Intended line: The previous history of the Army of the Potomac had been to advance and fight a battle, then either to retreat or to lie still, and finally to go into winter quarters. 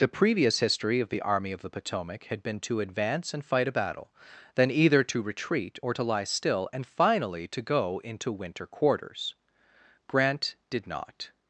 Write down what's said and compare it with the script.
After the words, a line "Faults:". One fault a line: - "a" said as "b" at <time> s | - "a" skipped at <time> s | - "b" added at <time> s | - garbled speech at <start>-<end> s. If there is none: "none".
The previous history of the Army of the Potomac had been to advance and fight a battle, then either to retreat or to lie still, and finally to go into winter quarters. Grant did not
Faults:
- "Grant did not" added at 10.1 s